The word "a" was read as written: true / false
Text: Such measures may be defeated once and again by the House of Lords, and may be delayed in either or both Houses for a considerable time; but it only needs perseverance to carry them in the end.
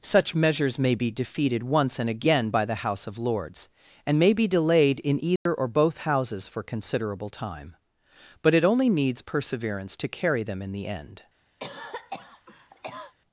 false